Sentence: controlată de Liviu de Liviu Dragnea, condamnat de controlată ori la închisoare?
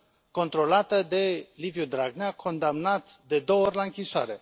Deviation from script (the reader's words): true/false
true